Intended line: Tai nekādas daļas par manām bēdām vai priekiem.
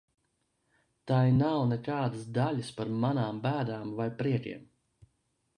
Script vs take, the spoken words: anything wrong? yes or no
yes